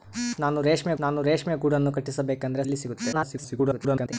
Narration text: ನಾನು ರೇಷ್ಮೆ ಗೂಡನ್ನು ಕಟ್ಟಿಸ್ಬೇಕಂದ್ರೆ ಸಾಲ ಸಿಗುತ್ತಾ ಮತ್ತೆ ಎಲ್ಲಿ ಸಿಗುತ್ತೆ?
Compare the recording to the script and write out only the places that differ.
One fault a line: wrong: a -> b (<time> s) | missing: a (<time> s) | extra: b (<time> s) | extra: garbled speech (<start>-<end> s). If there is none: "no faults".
extra: ನಾನು ರೇಷ್ಮೆ (1.0 s)
missing: ಸಾಲ ಸಿಗುತ್ತಾ ಮತ್ತೆ (2.6 s)
extra: garbled speech (3.1-4.1 s)